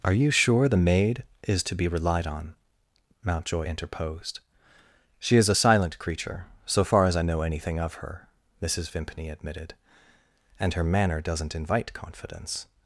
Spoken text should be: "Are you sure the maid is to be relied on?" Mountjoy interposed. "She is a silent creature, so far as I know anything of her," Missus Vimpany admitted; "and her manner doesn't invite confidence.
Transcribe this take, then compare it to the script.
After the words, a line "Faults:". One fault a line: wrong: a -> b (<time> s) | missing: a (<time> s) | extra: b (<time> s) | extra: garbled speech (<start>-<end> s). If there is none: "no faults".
"Are you sure the maid is to be relied on?" Mountjoy interposed. "She is a silent creature, so far as I know anything of her," Missus Vimpany admitted; "and her manner doesn't invite confidence.
Faults:
no faults